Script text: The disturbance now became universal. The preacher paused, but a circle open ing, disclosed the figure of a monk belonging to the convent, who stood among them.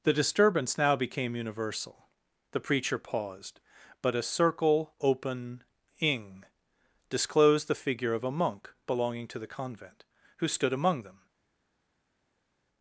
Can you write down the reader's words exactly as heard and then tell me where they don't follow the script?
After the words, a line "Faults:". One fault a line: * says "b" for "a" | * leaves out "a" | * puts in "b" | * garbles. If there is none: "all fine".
The disturbance now became universal. The preacher paused, but a circle open ing, disclosed the figure of a monk belonging to the convent, who stood among them.
Faults:
all fine